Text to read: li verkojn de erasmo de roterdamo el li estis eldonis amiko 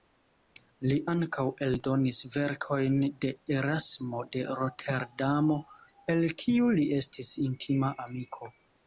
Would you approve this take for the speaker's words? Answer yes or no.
no